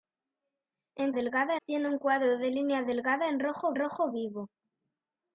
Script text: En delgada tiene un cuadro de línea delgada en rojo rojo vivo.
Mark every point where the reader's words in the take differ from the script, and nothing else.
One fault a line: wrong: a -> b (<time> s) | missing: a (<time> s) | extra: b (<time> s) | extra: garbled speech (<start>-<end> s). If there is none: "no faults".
no faults